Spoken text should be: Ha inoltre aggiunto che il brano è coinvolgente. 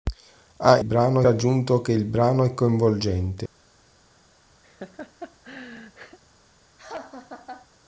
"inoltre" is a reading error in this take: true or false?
true